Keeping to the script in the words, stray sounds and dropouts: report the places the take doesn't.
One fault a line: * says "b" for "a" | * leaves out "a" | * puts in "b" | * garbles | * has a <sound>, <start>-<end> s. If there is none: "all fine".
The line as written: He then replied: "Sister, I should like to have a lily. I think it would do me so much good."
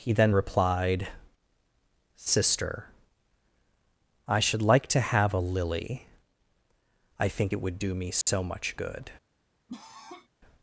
* has a dropout, 8.2-8.3 s
* has a cough, 9.7-10.3 s